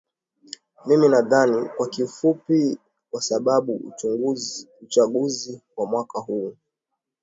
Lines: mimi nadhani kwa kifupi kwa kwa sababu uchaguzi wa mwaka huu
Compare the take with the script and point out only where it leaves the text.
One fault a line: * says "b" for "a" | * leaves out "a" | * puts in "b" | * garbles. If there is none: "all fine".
* leaves out "kwa"